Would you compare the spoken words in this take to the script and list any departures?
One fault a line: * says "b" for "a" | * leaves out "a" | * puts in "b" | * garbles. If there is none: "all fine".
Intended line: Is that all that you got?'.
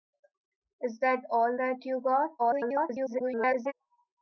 * garbles